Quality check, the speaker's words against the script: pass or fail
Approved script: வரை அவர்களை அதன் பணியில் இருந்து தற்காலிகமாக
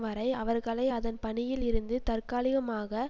pass